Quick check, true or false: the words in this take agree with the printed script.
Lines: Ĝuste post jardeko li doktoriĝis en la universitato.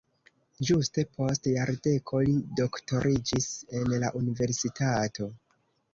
true